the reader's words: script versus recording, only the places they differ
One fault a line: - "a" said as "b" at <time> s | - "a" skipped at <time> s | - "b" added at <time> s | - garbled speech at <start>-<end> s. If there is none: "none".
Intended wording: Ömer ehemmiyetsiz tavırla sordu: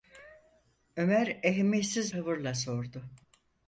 none